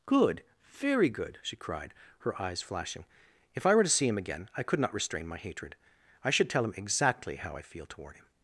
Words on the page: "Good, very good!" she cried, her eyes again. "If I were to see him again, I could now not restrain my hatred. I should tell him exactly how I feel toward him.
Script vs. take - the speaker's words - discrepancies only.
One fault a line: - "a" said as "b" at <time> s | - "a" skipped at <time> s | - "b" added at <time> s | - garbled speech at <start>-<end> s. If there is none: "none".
- "again" said as "flashing" at 2.6 s
- "now" skipped at 4.8 s